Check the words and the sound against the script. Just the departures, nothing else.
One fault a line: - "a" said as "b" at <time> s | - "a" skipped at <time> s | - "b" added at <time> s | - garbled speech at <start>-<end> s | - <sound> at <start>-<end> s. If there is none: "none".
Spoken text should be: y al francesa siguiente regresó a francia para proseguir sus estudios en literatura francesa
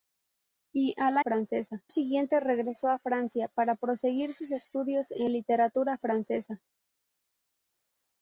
none